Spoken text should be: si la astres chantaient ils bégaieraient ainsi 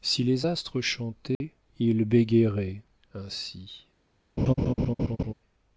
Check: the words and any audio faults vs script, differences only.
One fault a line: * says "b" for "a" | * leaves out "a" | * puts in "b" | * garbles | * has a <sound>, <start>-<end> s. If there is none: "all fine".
* says "les" for "la"
* has a dropout, 1.3-1.4 s
* has a laugh, 4.4-5.3 s